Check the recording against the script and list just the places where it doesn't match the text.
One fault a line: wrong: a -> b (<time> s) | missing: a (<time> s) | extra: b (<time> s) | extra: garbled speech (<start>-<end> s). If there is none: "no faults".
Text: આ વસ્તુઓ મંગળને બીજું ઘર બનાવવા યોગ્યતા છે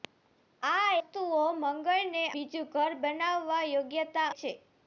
no faults